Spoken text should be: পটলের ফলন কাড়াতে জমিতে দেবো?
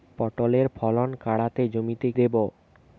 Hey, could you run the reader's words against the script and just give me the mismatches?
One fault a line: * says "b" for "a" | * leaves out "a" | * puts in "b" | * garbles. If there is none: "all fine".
all fine